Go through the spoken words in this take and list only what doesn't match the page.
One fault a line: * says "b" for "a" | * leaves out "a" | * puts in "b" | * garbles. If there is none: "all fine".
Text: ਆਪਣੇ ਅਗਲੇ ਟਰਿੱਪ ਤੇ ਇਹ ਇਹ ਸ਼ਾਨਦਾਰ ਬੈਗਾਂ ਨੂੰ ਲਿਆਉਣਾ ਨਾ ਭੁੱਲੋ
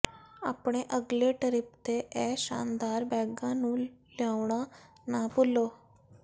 * leaves out "ਇਹ"